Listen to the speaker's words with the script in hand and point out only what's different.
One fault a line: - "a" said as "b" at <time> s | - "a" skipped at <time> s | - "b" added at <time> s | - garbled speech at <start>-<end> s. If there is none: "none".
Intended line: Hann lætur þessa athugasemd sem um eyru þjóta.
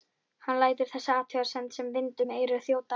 - "vind" added at 2.0 s